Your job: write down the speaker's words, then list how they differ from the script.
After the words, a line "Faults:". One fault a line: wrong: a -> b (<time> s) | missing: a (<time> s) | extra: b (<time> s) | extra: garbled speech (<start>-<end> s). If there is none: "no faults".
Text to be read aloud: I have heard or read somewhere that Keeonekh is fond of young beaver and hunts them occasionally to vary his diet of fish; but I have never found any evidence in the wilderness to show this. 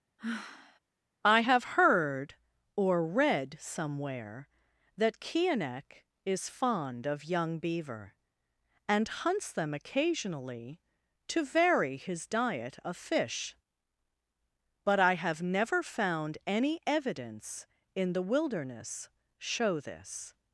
I have heard or read somewhere that Keeonekh is fond of young beaver and hunts them occasionally to vary his diet of fish; but I have never found any evidence in the wilderness show this.
Faults:
missing: to (19.1 s)